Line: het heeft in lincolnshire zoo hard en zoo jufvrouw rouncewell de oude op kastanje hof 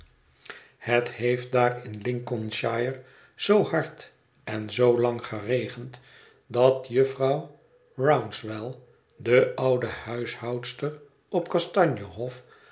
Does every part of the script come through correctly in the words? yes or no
no